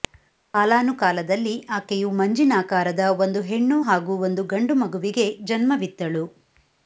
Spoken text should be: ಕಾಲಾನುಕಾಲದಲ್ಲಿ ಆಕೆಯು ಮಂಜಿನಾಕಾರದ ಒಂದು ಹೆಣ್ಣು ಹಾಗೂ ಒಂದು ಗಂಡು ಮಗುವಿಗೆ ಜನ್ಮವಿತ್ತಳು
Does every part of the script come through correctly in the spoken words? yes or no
yes